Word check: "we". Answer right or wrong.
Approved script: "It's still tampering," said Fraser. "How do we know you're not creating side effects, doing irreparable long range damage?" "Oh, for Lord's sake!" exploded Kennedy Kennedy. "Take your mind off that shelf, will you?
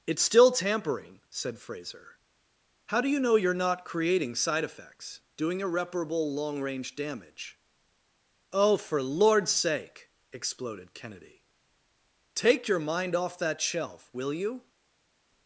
wrong